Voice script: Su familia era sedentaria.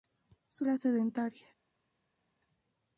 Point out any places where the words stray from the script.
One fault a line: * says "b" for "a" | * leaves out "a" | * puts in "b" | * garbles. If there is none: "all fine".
* leaves out "familia"